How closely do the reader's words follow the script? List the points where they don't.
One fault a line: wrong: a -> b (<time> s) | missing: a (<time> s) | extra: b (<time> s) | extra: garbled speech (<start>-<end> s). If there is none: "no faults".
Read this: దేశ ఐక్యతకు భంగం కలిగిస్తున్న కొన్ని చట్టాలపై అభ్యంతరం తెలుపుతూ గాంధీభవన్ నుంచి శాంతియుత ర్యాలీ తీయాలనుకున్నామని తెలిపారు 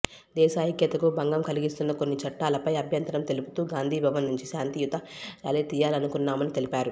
no faults